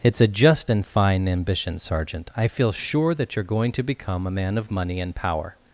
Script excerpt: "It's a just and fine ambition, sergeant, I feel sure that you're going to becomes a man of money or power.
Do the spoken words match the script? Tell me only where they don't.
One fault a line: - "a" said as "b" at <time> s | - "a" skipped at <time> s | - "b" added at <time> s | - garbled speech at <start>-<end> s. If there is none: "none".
- "becomes" said as "become" at 3.8 s
- "or" said as "and" at 5.0 s